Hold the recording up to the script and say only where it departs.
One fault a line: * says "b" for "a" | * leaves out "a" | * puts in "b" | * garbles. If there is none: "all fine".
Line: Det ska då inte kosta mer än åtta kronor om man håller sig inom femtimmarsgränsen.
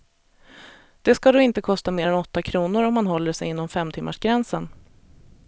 all fine